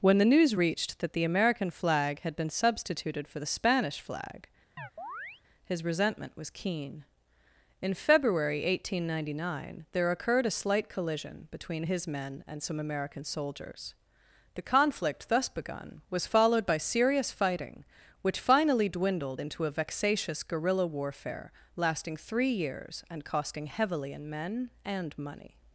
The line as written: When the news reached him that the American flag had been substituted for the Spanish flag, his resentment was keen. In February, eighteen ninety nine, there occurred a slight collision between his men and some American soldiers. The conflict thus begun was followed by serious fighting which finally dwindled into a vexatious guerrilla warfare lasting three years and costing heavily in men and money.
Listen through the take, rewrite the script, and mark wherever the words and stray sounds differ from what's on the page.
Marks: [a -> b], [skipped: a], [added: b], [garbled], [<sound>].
When the news reached [skipped: him] that the American flag had been substituted for the Spanish flag, [chirp] his resentment was keen. In February, eighteen ninety nine, there occurred a slight collision between his men and some American soldiers. The conflict thus begun was followed by serious fighting which finally dwindled into a vexatious guerrilla warfare lasting three years and costing heavily in men and money.